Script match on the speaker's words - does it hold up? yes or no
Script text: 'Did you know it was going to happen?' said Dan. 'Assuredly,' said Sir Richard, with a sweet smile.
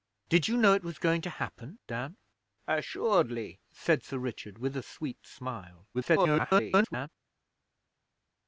no